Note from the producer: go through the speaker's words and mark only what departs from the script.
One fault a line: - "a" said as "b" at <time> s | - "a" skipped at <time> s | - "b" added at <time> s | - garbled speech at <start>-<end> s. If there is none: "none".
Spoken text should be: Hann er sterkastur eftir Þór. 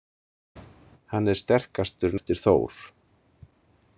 none